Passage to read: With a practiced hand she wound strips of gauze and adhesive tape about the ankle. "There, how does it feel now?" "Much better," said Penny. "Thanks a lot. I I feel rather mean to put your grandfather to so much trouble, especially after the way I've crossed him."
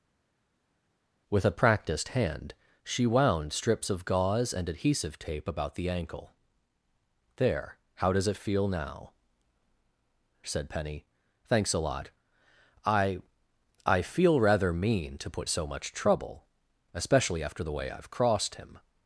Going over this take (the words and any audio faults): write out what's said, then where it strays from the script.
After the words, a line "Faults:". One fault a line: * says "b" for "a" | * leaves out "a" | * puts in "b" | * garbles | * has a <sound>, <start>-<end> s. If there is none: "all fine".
With a practiced hand she wound strips of gauze and adhesive tape about the ankle. "There, how does it feel now," "Said Penny. "Thanks a lot. I I feel rather mean to put so much trouble, especially after the way I've crossed him."
Faults:
* leaves out "Much better"
* leaves out "your grandfather to"